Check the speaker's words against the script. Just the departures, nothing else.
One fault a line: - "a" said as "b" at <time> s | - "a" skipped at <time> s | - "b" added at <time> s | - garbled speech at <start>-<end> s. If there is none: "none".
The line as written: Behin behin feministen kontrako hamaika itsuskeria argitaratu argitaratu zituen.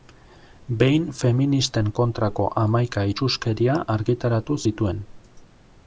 - "behin" skipped at 1.0 s
- "argitaratu" skipped at 4.6 s